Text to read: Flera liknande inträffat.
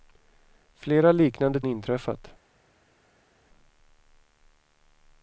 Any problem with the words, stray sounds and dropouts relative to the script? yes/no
no